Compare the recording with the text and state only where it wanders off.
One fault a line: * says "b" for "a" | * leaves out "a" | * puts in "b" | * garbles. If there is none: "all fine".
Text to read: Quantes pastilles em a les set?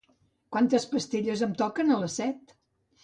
* puts in "toquen"